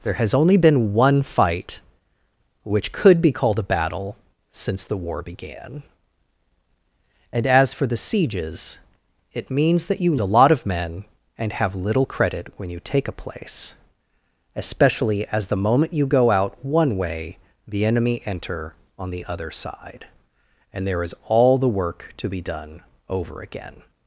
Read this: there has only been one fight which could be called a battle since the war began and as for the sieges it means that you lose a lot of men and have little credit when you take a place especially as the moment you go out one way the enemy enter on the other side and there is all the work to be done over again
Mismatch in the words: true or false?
true